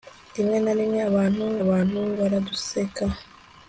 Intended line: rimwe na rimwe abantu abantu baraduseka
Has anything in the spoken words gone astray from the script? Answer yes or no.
no